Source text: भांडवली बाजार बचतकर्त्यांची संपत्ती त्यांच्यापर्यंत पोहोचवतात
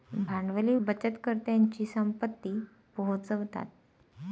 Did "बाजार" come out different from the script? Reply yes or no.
yes